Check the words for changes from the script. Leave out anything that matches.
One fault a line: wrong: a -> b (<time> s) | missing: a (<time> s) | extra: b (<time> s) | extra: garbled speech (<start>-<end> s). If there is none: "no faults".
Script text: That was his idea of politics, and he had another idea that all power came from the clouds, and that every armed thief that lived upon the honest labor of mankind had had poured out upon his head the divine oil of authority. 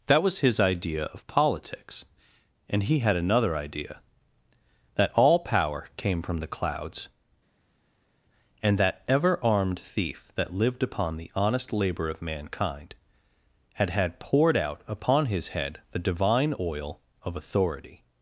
wrong: every -> ever (9.1 s)